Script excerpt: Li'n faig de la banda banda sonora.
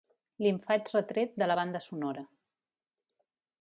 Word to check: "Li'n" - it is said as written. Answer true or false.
true